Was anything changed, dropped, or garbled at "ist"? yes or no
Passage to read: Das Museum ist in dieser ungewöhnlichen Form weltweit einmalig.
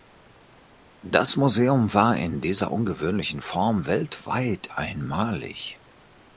yes